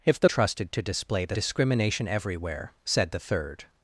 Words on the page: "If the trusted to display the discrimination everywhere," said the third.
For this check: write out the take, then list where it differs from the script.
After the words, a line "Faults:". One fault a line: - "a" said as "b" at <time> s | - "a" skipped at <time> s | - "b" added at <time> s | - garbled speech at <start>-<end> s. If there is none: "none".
"If the trusted to display the discrimination everywhere," said the third.
Faults:
none